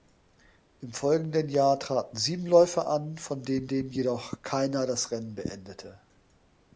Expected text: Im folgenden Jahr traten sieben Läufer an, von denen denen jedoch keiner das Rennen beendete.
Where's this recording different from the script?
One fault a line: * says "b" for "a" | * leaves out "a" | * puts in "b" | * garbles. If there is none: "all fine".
all fine